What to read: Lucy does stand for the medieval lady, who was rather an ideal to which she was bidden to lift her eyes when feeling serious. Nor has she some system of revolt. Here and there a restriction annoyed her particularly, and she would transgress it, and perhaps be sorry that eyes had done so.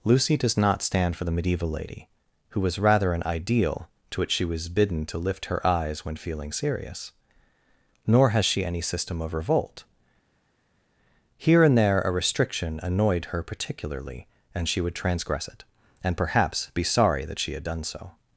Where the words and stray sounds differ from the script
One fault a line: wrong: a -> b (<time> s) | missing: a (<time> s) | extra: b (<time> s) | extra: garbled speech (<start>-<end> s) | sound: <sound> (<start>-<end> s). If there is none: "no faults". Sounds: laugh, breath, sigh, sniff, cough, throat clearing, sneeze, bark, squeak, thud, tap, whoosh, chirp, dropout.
extra: not (0.6 s)
wrong: some -> any (8.7 s)
wrong: eyes -> she (17.4 s)